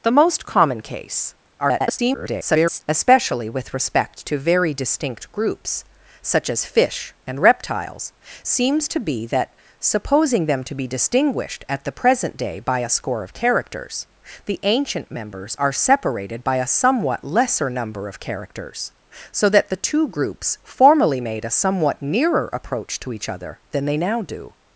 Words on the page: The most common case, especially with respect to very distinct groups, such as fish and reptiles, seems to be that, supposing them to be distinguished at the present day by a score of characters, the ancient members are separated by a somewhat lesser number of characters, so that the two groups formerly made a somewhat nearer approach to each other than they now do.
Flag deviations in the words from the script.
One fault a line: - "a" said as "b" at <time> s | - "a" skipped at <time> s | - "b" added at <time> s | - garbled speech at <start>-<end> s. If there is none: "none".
- garbled speech at 1.6-2.8 s